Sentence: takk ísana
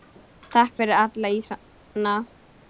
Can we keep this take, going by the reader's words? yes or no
no